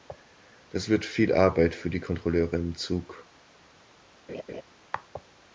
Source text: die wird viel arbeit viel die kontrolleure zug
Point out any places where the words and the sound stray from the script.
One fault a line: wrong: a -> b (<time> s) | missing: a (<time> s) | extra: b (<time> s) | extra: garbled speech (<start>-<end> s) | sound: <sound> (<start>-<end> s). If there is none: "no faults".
wrong: die -> das (0.7 s)
wrong: viel -> für (1.8 s)
extra: im (2.5 s)
sound: laugh (4.3-4.6 s)